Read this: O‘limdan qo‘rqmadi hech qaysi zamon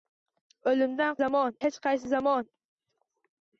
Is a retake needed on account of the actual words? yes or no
yes